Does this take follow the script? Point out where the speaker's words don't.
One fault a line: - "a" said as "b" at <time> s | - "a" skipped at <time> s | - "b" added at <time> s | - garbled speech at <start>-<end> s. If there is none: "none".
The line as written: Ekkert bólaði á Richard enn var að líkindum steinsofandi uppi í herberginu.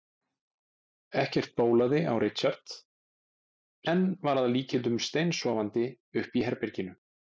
none